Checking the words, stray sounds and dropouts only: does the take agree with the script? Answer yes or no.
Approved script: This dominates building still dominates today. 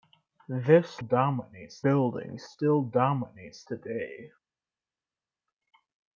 yes